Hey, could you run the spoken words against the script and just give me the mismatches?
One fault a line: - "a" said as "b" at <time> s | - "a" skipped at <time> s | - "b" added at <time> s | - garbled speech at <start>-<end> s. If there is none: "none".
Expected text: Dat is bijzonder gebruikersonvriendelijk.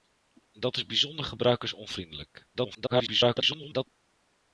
- garbled speech at 2.5-3.9 s